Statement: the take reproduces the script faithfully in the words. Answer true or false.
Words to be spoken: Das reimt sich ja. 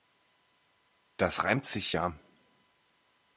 true